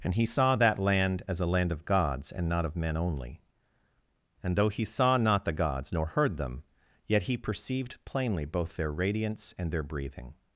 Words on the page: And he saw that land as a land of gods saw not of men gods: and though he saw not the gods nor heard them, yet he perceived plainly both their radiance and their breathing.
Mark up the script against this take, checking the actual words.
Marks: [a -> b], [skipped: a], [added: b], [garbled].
And he saw that land as a land of gods [saw -> and] not of men [gods: -> only] and though he saw not the gods nor heard them, yet he perceived plainly both their radiance and their breathing.